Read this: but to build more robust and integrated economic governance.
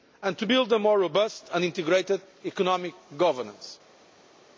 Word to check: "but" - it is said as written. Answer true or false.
false